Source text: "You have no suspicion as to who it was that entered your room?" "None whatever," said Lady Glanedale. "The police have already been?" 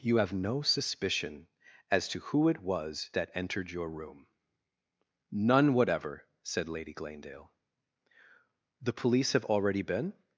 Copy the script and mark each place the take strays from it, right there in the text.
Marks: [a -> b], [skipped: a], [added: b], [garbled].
"You have no suspicion as to who it was that entered your room?" "None whatever," said Lady Glanedale. "The police have already been?"